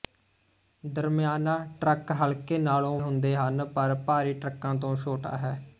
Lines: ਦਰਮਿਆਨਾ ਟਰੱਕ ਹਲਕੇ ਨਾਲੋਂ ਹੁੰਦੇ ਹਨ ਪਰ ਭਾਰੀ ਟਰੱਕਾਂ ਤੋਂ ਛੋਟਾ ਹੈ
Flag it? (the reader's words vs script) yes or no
no